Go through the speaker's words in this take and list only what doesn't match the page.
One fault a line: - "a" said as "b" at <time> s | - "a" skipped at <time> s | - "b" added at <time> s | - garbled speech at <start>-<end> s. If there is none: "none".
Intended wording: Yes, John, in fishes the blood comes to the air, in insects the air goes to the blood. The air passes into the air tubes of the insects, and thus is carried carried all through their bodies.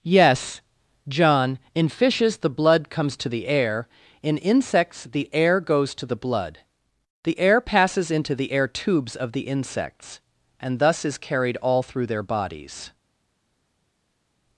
- "carried" skipped at 11.6 s